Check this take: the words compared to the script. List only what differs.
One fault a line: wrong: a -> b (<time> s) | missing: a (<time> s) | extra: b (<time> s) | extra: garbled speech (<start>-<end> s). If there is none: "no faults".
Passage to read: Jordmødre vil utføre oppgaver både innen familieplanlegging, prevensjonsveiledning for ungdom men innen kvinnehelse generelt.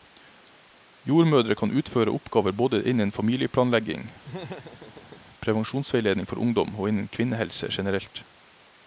wrong: vil -> kan (1.6 s)
wrong: men -> og (6.8 s)